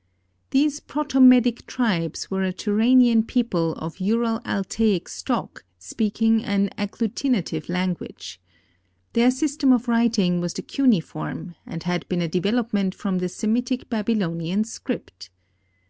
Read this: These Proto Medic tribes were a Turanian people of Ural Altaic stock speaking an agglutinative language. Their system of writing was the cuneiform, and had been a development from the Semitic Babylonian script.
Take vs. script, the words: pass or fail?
pass